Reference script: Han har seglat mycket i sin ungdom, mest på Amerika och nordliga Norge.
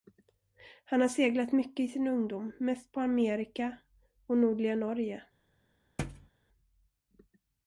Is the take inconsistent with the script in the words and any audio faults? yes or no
yes